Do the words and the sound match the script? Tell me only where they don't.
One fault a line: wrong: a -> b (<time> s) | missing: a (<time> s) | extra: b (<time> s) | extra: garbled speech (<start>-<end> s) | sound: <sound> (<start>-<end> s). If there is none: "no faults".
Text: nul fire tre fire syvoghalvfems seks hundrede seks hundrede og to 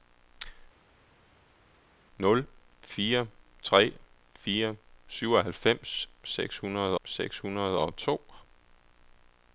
no faults